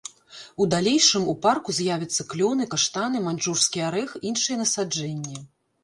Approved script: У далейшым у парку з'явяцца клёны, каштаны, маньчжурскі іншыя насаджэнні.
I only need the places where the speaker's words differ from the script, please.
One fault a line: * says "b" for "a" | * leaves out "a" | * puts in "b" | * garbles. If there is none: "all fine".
* puts in "арэх"